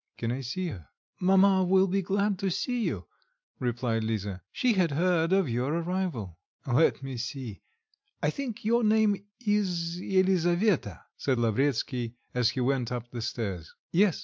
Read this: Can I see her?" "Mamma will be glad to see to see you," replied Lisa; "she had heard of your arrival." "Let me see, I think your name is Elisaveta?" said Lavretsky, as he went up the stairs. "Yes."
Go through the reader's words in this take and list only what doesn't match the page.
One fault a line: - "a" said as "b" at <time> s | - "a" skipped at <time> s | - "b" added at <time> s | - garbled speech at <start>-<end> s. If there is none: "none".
- "to see" skipped at 2.8 s